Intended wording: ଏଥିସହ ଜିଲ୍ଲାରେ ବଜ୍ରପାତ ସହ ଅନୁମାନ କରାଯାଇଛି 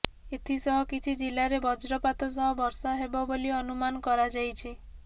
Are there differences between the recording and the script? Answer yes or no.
yes